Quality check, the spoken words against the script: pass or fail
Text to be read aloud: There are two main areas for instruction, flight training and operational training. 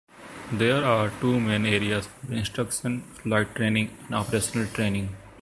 pass